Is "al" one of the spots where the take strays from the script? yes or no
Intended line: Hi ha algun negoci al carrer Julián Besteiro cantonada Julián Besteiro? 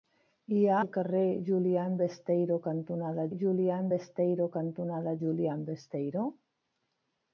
yes